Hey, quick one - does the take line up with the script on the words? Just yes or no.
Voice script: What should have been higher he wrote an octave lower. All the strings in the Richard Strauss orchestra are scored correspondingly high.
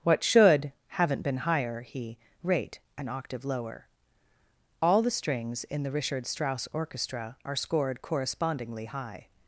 no